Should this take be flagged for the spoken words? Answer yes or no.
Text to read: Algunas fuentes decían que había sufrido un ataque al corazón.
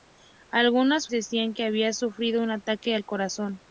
yes